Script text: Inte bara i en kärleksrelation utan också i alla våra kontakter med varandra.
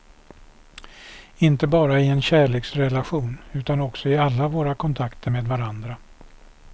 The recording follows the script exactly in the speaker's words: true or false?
true